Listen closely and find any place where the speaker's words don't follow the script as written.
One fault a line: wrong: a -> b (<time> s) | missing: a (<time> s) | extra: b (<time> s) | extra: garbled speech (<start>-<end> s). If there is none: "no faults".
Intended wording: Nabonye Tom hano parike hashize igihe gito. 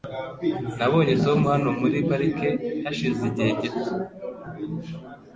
extra: muri (1.8 s)